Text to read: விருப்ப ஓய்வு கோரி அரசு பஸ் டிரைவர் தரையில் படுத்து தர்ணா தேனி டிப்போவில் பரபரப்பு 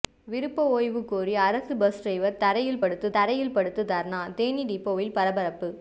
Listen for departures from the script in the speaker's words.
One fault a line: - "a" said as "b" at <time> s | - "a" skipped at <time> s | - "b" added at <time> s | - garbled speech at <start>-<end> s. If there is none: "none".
- "தரையில் படுத்து" added at 3.1 s